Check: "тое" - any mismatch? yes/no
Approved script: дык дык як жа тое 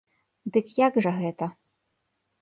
yes